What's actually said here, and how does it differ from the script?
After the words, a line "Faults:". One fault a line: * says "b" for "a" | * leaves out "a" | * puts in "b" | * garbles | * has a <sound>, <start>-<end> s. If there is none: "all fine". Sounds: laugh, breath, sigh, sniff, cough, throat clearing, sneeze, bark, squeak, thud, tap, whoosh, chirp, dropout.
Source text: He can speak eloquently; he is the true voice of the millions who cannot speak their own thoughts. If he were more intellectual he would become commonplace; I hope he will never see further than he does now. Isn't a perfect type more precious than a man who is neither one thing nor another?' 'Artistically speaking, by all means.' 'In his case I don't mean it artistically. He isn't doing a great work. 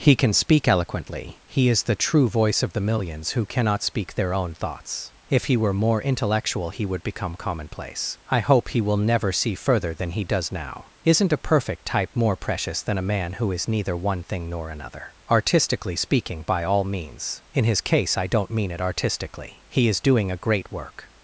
He can speak eloquently; he is the true voice of the millions who cannot speak their own thoughts. If he were more intellectual he would become commonplace; I hope he will never see further than he does now. Isn't a perfect type more precious than a man who is neither one thing nor another?' 'Artistically speaking, by all means.' 'In his case I don't mean it artistically. He is doing a great work.
Faults:
* says "is" for "isn't"